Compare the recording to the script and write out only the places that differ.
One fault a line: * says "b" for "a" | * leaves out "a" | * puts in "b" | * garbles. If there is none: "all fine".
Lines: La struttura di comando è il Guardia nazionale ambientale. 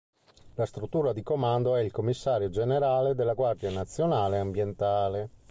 * puts in "Commissario generale della"